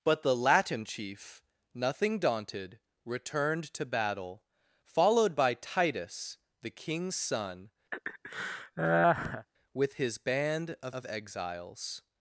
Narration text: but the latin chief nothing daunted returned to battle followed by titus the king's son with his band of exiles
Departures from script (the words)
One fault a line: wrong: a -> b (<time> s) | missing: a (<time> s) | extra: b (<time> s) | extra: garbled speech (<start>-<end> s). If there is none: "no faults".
extra: of (10.9 s)